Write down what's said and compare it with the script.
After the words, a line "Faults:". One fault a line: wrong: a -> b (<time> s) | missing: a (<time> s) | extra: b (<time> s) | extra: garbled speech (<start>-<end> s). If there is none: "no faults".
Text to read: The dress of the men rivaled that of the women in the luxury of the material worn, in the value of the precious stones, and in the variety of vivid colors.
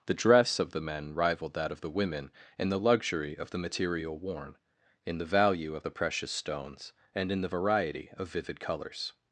The dress of the men rivaled that of the women in the luxury of the material worn, in the value of the precious stones, and in the variety of vivid colors.
Faults:
no faults